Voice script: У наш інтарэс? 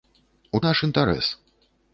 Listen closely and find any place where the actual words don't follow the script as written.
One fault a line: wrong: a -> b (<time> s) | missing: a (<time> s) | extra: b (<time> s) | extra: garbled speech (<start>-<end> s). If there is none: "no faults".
no faults